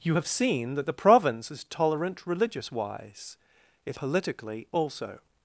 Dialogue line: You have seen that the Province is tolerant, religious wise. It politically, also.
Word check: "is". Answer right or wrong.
right